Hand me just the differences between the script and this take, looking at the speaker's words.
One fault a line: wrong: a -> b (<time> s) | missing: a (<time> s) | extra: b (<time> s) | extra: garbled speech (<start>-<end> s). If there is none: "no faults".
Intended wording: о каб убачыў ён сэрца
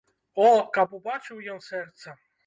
no faults